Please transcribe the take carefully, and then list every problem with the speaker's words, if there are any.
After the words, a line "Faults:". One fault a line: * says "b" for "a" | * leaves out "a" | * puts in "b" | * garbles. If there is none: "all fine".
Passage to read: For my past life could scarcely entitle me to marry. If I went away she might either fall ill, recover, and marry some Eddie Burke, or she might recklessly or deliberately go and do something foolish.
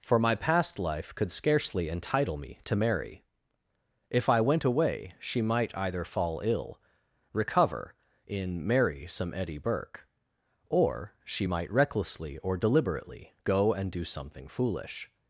For my past life could scarcely entitle me to marry. If I went away she might either fall ill, recover, in marry some Eddie Burke, or she might recklessly or deliberately go and do something foolish.
Faults:
* says "in" for "and"